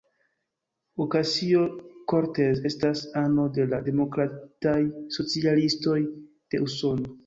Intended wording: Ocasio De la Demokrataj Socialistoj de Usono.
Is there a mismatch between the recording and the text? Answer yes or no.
yes